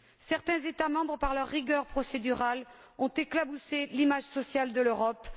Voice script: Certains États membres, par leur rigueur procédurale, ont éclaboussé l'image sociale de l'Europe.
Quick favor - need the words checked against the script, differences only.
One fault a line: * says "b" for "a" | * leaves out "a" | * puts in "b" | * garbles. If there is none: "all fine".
all fine